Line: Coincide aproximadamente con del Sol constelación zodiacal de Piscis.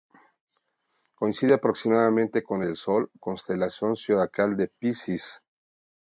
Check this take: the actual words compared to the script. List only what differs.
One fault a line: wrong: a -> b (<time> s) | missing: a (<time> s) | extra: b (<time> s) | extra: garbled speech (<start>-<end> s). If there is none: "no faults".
no faults